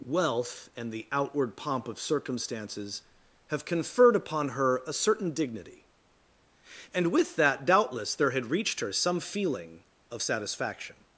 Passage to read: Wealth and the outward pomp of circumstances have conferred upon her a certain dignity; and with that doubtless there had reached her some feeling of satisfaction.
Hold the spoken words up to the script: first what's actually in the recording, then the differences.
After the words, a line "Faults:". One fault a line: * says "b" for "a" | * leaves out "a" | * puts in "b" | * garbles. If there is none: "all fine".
Wealth and the outward pomp of circumstances have conferred upon her a certain dignity; and with that doubtless there had reached her some feeling of satisfaction.
Faults:
all fine